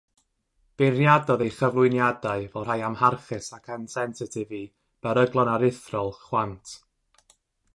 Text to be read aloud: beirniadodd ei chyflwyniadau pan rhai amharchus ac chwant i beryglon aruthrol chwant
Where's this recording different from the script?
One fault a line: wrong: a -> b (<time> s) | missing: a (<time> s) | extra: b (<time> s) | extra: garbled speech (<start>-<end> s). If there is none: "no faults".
wrong: pan -> fel (2.5 s)
wrong: chwant -> ansensitif (3.8 s)